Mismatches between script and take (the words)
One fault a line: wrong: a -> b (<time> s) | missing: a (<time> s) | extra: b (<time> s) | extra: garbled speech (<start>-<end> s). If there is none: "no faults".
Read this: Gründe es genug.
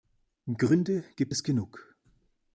extra: gibt (1.2 s)